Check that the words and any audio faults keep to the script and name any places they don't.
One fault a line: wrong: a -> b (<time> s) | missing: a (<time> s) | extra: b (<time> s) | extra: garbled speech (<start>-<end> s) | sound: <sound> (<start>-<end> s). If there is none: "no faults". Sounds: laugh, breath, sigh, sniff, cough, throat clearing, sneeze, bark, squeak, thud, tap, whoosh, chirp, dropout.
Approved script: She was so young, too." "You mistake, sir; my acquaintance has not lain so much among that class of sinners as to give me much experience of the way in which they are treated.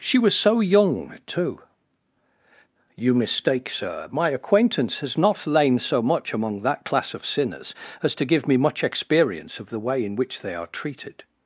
no faults